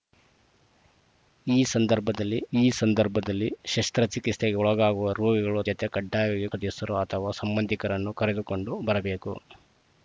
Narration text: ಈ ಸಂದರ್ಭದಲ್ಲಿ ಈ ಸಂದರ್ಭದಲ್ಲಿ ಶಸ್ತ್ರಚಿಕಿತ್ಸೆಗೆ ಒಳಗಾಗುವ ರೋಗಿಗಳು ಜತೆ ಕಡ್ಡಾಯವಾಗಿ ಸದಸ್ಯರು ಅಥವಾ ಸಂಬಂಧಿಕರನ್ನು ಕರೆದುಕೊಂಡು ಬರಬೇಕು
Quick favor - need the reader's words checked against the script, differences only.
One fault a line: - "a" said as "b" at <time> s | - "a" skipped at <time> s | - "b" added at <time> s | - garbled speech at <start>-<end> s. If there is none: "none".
none